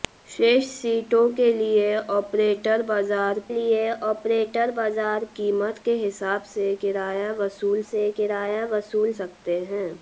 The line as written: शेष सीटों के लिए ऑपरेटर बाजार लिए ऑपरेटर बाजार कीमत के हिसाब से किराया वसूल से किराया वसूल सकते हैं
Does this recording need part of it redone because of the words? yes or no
no